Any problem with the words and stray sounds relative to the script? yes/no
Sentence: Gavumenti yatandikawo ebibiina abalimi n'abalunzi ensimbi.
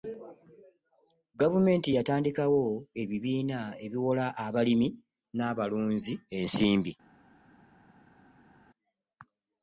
yes